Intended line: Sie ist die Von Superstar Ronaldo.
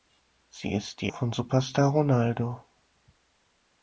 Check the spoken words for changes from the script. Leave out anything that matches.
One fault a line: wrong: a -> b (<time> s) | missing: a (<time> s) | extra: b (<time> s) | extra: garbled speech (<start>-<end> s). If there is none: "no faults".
no faults